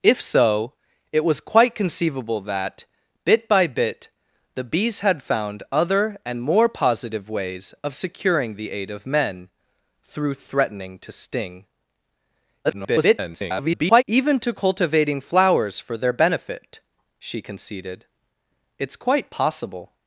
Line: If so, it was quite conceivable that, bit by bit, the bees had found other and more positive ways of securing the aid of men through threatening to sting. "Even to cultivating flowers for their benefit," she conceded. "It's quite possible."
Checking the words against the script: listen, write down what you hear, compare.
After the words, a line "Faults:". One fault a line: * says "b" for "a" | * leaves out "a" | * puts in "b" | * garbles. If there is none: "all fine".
If so, it was quite conceivable that, bit by bit, the bees had found other and more positive ways of securing the aid of men through threatening to sting. [garbled] "Even to cultivating flowers for their benefit," she conceded. "It's quite possible."
Faults:
* garbles